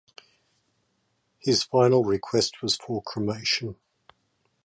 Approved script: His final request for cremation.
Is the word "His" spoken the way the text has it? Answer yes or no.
yes